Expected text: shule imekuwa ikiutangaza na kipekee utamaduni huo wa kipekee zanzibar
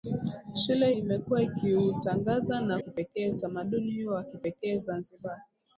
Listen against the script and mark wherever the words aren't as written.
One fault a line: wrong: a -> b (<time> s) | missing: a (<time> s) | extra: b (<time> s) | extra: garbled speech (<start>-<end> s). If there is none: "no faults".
no faults